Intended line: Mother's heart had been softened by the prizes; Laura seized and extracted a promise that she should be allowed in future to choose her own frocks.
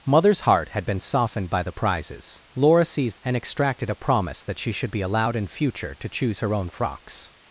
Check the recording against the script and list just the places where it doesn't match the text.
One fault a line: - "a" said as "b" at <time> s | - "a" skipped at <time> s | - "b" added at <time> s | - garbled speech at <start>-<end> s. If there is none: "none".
none